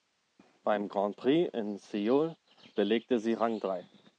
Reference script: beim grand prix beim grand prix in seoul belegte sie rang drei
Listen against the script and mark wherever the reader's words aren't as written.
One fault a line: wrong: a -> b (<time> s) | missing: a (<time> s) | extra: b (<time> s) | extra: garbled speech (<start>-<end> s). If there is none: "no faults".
missing: beim grand prix (1.5 s)